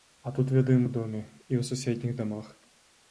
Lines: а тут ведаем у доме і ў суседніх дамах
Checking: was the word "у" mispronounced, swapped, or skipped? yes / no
no